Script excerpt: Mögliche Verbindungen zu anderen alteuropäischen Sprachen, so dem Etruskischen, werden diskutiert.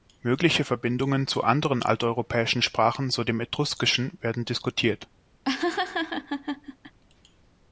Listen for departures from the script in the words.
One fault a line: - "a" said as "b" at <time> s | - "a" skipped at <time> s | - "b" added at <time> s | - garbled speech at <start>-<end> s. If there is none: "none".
none